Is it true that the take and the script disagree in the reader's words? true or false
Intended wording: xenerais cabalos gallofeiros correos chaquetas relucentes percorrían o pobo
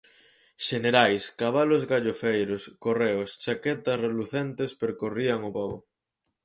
false